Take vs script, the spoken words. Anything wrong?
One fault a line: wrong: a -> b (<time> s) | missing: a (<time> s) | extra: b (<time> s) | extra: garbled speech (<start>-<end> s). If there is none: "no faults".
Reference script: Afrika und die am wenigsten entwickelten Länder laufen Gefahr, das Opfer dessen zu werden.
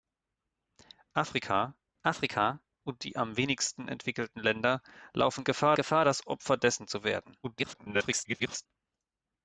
extra: afrika (2.0 s)
extra: Gefahr (5.7 s)
extra: garbled speech (7.4-8.7 s)